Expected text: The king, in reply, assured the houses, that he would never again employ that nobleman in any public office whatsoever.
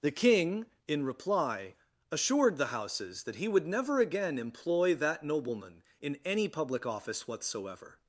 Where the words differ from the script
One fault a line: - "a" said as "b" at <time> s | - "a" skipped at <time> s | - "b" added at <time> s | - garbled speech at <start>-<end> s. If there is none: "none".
none